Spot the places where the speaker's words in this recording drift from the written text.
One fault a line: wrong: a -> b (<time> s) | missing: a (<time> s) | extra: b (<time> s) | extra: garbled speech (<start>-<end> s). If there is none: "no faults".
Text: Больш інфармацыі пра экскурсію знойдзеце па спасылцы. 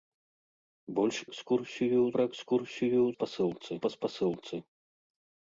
wrong: інфармацыі -> экскурсію (1.3 s)
wrong: знойдзеце -> спасылцы (3.2 s)